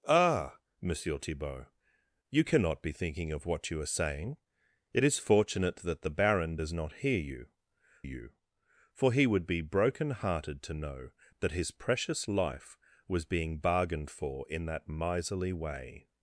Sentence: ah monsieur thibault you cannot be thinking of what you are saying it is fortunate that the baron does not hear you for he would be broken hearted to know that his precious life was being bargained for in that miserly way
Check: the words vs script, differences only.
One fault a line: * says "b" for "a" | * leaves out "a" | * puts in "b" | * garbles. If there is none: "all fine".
* puts in "you"